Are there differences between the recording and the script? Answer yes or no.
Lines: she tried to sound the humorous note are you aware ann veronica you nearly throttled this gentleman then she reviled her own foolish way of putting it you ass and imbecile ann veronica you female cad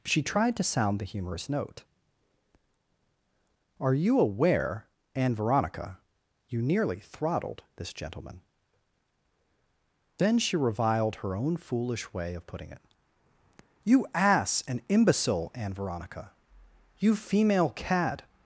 no